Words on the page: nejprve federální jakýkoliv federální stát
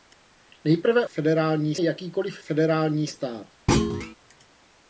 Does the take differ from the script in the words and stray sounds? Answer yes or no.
yes